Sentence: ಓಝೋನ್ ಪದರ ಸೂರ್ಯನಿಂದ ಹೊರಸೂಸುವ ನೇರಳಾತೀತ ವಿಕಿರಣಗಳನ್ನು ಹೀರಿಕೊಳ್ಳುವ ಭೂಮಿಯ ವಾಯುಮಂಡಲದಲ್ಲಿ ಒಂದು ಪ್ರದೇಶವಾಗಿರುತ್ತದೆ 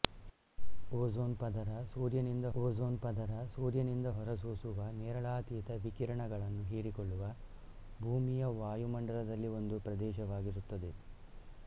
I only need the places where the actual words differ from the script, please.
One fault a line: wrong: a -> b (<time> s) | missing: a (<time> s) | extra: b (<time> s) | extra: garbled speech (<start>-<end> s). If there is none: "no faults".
extra: ಓಝೋನ್ ಪದರ ಸೂರ್ಯನಿಂದ (2.5 s)